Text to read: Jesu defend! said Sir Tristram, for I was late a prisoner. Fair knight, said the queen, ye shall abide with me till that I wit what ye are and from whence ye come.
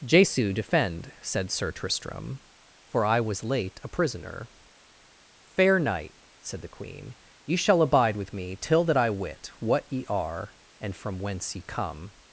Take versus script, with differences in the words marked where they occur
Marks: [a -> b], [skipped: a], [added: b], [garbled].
Jesu defend! said Sir Tristram, for I was late a prisoner. Fair knight, said the queen, ye shall abide with me till that I wit what ye are and from whence ye come.